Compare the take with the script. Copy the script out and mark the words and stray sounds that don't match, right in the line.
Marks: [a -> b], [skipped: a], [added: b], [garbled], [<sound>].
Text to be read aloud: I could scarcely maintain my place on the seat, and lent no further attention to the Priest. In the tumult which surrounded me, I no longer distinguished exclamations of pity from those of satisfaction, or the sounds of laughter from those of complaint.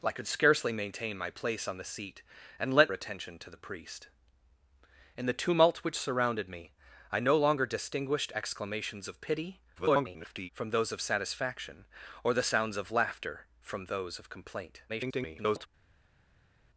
I could scarcely maintain my place on the seat, and lent [skipped: no further] attention to the Priest. In the tumult which surrounded me, I no longer distinguished exclamations of pity [garbled] from those of satisfaction, or the sounds of laughter from those of complaint. [garbled]